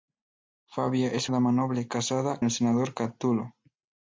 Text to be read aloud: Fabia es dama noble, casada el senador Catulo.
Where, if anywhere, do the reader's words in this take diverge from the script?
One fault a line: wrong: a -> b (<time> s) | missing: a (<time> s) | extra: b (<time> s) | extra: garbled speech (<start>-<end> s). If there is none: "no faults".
no faults